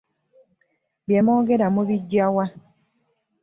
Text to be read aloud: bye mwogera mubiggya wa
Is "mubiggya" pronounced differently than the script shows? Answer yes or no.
no